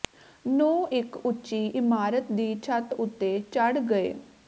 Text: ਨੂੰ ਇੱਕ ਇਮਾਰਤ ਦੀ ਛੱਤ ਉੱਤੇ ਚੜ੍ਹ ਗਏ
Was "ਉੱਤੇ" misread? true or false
false